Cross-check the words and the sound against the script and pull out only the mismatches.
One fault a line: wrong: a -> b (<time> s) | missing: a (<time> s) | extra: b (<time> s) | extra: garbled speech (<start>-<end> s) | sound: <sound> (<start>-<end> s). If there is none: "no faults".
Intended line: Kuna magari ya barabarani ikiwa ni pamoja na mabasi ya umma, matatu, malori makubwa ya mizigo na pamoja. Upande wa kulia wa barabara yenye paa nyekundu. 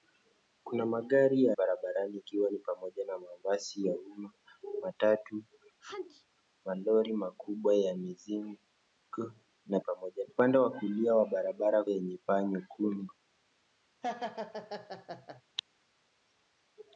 sound: sneeze (5.8-6.3 s)
sound: laugh (14.0-15.4 s)